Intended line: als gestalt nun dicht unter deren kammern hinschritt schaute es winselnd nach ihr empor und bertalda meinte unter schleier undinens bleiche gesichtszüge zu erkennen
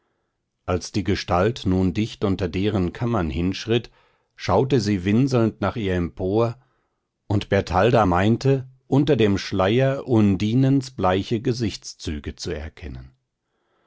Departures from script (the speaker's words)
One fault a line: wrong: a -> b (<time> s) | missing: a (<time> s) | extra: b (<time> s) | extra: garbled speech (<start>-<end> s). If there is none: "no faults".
extra: die (0.9 s)
wrong: es -> sie (4.8 s)
extra: dem (9.2 s)